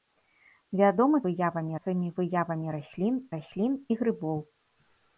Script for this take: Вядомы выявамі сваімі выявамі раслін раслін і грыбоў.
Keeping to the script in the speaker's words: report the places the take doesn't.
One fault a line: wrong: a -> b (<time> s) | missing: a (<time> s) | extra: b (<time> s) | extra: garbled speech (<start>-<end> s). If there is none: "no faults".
no faults